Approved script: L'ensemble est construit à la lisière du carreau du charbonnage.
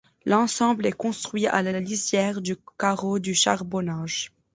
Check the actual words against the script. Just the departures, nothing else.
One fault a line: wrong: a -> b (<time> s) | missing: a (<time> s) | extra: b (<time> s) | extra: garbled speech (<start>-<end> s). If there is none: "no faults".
extra: la (1.7 s)